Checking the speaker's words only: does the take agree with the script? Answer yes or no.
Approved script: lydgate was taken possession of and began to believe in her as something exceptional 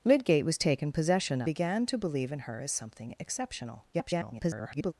no